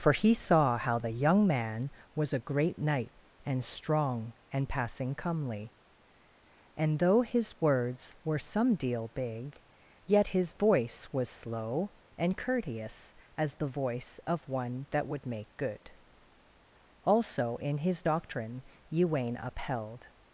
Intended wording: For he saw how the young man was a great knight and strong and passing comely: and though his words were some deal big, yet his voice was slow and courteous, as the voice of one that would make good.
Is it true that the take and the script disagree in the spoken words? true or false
true